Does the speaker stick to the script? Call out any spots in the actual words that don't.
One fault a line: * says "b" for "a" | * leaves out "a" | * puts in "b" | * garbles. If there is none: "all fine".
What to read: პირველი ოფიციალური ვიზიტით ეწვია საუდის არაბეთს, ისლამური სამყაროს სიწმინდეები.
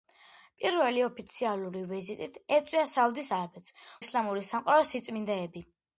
all fine